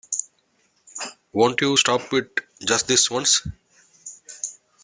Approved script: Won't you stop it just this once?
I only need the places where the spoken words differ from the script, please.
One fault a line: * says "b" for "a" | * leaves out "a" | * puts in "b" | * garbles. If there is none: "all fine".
all fine